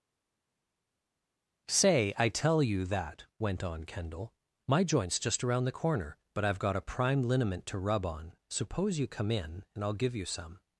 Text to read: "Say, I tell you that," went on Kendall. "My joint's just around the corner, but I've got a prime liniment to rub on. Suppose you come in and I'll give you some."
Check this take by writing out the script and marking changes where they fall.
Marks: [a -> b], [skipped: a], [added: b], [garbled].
"Say, I tell you that," went on Kendall. "My joint's just around the corner, but I've got a prime liniment to rub on. Suppose you come in and I'll give you some."